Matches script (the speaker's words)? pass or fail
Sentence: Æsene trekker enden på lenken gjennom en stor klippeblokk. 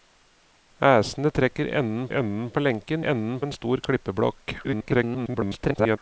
fail